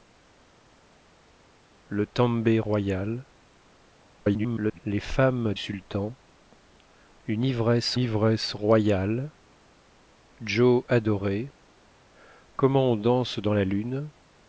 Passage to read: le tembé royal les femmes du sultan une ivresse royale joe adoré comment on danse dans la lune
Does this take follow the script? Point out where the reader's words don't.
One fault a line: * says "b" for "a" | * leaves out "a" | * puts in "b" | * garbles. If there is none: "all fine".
* garbles
* leaves out "du"
* puts in "ivresse"